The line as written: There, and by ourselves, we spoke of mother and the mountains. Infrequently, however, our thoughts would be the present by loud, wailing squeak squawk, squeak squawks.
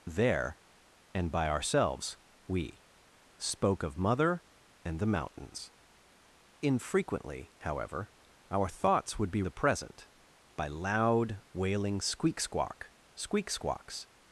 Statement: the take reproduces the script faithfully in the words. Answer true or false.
true